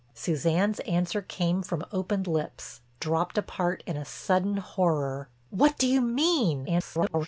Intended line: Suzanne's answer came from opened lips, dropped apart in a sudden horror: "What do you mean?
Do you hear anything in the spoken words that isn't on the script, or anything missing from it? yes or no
yes